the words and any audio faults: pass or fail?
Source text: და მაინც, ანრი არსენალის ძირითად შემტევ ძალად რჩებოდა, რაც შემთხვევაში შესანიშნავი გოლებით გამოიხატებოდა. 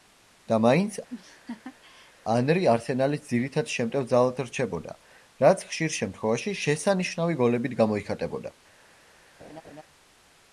fail